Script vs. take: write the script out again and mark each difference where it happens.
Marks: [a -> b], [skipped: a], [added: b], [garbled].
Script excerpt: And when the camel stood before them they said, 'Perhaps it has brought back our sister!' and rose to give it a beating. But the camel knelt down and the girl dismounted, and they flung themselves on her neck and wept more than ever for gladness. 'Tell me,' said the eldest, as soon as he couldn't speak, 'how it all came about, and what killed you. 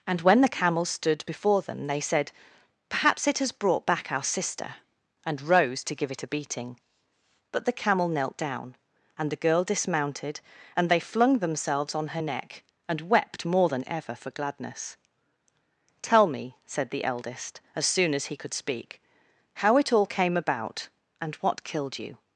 And when the camel stood before them they said, 'Perhaps it has brought back our sister!' and rose to give it a beating. But the camel knelt down and the girl dismounted, and they flung themselves on her neck and wept more than ever for gladness. 'Tell me,' said the eldest, as soon as he [couldn't -> could] speak, 'how it all came about, and what killed you.